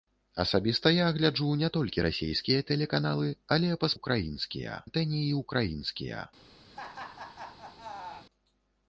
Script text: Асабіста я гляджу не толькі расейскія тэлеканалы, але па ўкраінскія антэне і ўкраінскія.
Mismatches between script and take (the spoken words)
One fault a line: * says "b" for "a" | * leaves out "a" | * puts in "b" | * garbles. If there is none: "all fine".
all fine